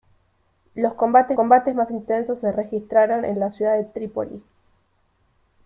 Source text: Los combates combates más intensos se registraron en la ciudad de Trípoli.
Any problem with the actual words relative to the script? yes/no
no